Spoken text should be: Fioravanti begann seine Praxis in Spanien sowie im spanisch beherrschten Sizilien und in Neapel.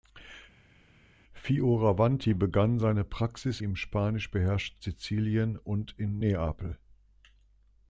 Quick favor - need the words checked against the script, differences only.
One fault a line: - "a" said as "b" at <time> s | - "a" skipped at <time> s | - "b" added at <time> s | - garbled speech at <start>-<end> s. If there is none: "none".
- "in Spanien sowie" skipped at 3.6 s